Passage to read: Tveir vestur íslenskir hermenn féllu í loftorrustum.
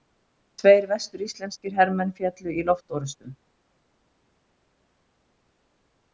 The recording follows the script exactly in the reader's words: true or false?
true